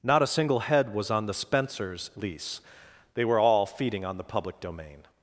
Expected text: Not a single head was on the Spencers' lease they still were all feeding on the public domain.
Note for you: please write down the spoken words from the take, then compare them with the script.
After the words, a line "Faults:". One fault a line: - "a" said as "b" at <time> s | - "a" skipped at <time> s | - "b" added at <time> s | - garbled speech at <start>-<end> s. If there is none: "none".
Not a single head was on the Spencers' lease they were all feeding on the public domain.
Faults:
- "still" skipped at 3.2 s